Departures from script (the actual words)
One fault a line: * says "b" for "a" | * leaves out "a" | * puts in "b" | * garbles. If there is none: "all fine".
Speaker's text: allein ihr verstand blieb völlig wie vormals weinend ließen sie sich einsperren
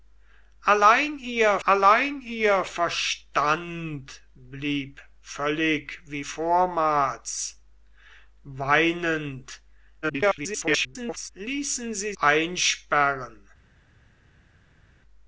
* puts in "allein ihr"
* garbles
* leaves out "sich"